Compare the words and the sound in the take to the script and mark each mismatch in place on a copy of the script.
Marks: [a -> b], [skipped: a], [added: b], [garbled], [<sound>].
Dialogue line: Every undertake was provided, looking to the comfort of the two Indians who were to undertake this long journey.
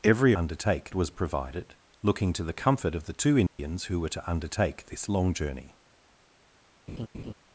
Every undertake was provided, looking to the comfort of the two Indians [dropout] who were to undertake this long journey. [laugh]